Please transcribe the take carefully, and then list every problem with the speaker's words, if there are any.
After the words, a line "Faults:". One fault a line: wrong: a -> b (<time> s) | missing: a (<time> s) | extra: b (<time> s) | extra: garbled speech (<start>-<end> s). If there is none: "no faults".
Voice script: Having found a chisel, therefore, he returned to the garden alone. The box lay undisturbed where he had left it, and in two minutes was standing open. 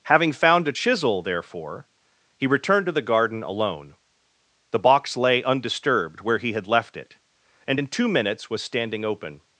Having found a chisel, therefore, he returned to the garden alone. The box lay undisturbed where he had left it, and in two minutes was standing open.
Faults:
no faults